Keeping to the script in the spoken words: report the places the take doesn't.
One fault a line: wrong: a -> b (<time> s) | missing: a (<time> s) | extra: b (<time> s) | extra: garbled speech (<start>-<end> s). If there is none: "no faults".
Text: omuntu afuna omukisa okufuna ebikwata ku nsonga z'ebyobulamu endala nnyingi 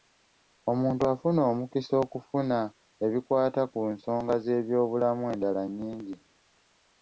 no faults